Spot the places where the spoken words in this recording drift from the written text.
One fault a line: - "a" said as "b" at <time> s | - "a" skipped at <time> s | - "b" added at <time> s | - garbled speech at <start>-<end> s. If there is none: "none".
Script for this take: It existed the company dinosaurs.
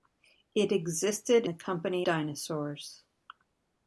none